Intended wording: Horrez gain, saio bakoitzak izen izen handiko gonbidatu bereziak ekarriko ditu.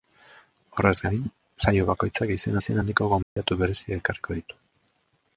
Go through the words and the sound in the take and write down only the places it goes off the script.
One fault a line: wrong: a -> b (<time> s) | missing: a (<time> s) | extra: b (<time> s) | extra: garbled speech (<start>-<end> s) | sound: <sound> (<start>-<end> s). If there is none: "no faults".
sound: dropout (3.2-3.4 s)